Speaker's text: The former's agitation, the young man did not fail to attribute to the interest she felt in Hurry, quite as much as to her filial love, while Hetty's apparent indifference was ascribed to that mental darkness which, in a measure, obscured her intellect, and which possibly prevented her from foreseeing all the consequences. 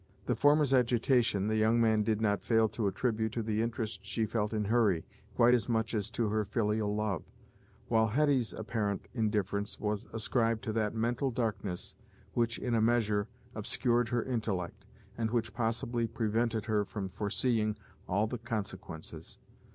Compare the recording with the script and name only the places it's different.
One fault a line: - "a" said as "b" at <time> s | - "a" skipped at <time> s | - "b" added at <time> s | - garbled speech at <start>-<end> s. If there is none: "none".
none